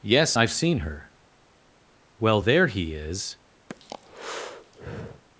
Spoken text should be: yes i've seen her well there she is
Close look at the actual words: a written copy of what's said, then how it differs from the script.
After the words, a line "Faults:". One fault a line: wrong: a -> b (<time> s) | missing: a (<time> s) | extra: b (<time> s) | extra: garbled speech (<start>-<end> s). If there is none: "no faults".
yes i've seen her well there he is
Faults:
wrong: she -> he (2.7 s)